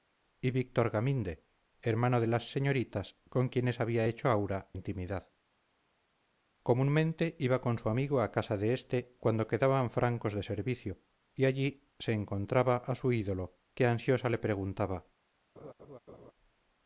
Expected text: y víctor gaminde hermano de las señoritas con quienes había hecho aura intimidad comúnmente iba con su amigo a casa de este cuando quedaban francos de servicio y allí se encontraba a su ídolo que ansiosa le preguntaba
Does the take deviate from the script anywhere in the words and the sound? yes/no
yes